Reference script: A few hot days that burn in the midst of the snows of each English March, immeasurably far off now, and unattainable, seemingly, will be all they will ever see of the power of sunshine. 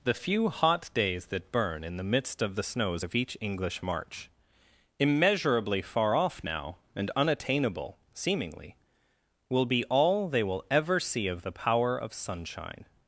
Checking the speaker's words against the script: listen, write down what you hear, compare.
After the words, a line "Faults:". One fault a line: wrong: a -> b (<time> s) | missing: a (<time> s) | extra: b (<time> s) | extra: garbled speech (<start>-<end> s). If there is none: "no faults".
The few hot days that burn in the midst of the snows of each English March, immeasurably far off now, and unattainable, seemingly, will be all they will ever see of the power of sunshine.
Faults:
wrong: A -> The (0.0 s)